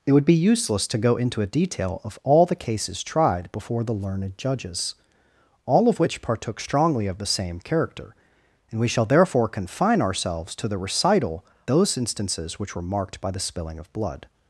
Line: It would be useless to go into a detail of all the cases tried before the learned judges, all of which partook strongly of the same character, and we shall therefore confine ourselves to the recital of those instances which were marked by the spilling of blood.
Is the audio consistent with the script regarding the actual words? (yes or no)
no